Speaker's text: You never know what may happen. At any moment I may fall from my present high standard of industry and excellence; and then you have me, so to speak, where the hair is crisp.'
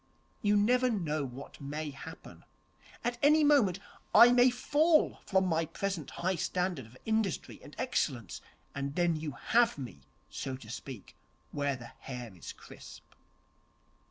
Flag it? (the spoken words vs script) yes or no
no